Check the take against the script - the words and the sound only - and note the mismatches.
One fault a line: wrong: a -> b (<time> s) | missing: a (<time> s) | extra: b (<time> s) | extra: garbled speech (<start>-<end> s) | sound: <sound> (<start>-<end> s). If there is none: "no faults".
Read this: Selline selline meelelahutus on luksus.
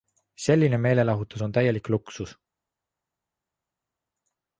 missing: selline (0.8 s)
extra: täielik (1.5 s)